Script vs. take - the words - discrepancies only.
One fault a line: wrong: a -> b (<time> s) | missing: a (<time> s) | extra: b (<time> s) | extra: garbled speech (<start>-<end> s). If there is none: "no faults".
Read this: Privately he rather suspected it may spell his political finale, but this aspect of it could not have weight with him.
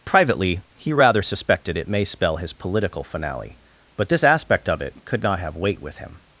no faults